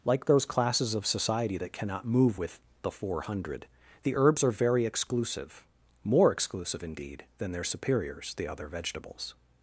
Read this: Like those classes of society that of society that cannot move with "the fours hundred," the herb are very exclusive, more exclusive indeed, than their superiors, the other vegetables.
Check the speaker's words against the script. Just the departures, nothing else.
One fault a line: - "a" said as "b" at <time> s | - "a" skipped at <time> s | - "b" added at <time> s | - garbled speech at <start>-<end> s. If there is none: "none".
- "of society that" skipped at 1.7 s
- "fours" said as "four" at 2.9 s
- "herb" said as "herbs" at 4.1 s